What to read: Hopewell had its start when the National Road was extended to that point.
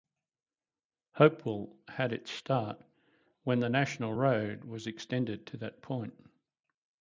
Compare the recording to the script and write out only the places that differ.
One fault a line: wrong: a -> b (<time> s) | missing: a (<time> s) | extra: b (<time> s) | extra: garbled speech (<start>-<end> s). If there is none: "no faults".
no faults